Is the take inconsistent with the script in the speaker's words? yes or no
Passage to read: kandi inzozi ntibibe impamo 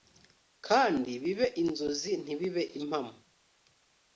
yes